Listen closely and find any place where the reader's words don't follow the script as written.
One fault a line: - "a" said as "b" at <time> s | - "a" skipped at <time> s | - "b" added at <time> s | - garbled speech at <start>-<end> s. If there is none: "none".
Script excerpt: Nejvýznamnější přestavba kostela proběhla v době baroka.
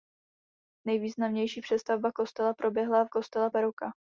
- "době" said as "kostela" at 3.1 s